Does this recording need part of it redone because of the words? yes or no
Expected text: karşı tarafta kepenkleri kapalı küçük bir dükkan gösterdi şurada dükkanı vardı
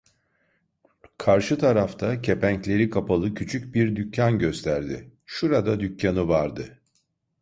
no